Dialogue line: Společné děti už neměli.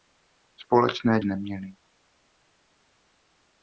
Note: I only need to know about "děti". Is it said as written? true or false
false